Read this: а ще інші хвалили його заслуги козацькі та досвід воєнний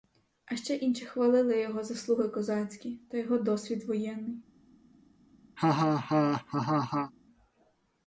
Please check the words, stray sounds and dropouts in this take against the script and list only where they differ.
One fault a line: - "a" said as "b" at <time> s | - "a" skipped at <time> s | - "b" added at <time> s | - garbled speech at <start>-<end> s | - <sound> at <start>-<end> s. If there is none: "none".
- "його" added at 3.2 s
- laugh at 5.6-7.1 s